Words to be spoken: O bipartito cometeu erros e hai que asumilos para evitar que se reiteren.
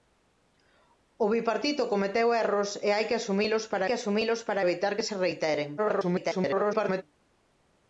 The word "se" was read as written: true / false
true